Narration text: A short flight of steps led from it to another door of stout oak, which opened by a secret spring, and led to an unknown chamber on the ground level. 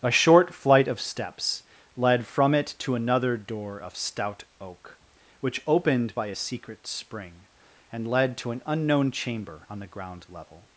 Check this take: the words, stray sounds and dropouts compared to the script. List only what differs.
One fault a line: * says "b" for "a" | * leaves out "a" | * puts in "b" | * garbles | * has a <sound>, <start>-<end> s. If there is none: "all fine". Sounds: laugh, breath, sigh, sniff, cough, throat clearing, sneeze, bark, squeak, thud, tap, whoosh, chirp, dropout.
all fine